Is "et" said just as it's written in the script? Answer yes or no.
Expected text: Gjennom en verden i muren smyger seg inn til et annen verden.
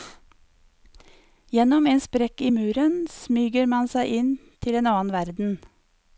no